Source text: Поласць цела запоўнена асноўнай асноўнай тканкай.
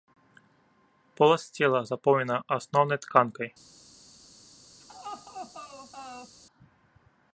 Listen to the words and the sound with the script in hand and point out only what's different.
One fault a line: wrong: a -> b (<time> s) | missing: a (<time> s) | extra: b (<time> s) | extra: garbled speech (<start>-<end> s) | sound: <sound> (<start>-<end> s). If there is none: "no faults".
missing: асноўнай (3.0 s)
sound: laugh (4.8-6.3 s)